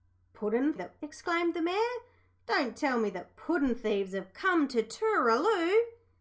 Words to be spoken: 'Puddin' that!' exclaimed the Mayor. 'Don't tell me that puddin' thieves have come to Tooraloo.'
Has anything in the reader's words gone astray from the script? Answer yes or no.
no